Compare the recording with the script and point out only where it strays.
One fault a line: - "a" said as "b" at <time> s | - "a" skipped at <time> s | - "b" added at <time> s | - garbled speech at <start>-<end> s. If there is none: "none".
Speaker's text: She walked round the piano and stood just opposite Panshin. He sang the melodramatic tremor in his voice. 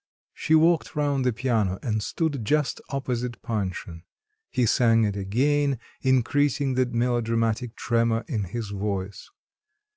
- "it again increasing" added at 5.0 s